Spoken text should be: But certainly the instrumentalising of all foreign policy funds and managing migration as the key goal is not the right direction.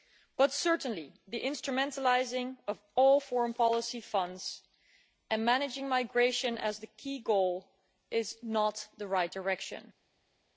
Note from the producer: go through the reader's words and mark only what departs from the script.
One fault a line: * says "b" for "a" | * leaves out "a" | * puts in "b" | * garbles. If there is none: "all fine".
all fine